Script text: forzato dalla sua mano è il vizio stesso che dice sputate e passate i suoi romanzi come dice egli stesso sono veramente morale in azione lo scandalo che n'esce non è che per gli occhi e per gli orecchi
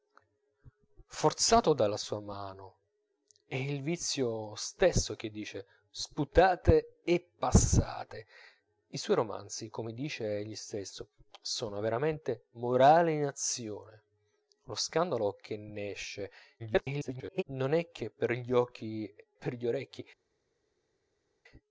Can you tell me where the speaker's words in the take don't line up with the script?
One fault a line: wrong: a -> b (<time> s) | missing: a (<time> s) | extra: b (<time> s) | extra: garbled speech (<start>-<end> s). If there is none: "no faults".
extra: garbled speech (16.6-17.4 s)
missing: e (19.1 s)